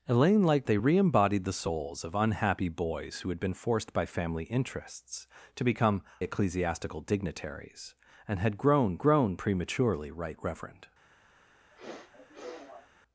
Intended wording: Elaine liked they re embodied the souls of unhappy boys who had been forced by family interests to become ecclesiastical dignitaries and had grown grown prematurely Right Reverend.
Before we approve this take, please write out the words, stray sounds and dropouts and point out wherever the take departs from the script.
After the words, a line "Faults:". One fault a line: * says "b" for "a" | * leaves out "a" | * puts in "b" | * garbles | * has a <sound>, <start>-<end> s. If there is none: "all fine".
Elaine liked they re embodied the souls of unhappy boys who had been forced by family interests to become ecclesiastical dignitaries and had grown grown prematurely Right Reverend.
Faults:
* has a sniff, 11.7-12.9 s